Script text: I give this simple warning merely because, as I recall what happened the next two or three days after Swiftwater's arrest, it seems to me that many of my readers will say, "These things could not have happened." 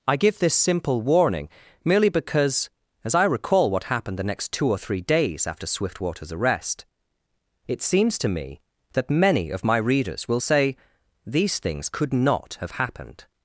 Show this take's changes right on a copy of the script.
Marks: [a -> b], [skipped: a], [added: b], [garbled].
I give this simple warning merely because, as I recall what happened the next two or three days after Swiftwater's arrest, it seems to me that many of my readers will say, "These things could not have happened."